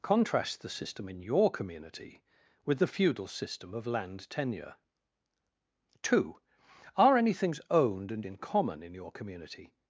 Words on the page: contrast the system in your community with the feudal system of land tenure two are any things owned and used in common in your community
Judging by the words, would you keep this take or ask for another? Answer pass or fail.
fail